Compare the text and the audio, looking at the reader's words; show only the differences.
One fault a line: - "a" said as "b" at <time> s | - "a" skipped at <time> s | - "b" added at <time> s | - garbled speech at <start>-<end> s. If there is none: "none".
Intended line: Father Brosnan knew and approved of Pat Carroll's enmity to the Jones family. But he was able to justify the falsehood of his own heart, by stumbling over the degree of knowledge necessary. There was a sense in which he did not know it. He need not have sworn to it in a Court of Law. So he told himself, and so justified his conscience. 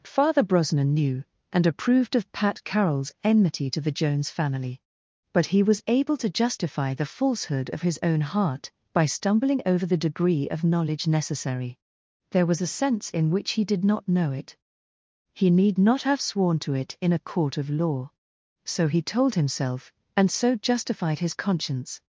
none